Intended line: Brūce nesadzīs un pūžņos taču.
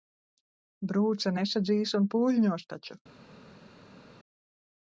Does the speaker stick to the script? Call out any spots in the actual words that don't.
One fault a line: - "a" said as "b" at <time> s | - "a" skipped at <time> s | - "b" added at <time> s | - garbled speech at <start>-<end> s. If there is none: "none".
none